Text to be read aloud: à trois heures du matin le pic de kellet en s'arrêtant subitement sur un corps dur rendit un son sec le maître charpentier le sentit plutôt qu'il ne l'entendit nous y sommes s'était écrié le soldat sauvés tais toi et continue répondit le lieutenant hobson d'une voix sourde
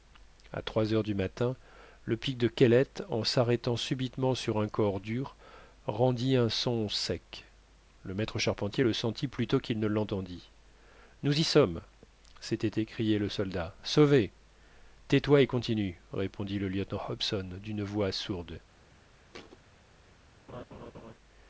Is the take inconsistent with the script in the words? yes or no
no